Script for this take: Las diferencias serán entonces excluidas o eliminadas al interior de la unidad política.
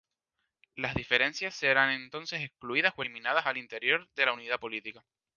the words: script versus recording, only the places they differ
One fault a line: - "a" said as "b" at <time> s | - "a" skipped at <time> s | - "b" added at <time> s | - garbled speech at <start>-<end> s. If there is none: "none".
none